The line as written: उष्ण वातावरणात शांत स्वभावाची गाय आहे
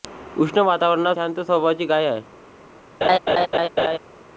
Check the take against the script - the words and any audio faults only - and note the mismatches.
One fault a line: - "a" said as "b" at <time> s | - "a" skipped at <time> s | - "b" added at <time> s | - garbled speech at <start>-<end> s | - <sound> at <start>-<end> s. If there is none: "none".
- laugh at 3.0-4.0 s